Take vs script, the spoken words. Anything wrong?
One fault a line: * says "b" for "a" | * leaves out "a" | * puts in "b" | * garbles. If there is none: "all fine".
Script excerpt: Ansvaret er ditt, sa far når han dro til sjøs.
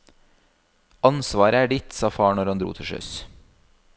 all fine